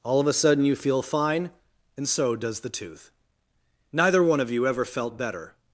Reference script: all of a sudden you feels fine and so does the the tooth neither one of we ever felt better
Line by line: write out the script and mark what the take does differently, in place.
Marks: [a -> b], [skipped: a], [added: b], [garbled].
all of a sudden you [feels -> feel] fine and so does the [skipped: the] tooth neither one of [we -> you] ever felt better